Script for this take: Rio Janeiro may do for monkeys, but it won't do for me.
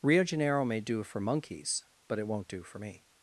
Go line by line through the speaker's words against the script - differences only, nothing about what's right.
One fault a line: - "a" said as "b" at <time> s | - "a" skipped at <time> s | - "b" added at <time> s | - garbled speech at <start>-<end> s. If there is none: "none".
none